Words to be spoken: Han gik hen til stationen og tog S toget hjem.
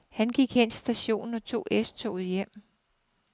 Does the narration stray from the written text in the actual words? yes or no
no